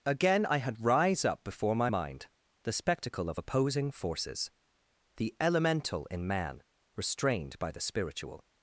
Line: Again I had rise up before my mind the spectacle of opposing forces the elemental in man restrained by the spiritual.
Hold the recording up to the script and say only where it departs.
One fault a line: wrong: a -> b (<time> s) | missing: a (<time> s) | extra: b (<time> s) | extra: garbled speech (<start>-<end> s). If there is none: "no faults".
no faults